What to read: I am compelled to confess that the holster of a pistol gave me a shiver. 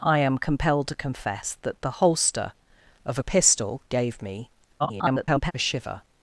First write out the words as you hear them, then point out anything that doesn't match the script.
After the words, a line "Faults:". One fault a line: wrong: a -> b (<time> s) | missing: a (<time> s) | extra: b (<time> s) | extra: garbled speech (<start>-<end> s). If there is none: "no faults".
I am compelled to confess that the holster of a pistol gave me [garbled] a shiver.
Faults:
extra: garbled speech (4.8-5.5 s)